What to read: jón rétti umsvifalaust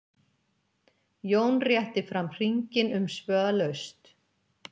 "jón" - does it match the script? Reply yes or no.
yes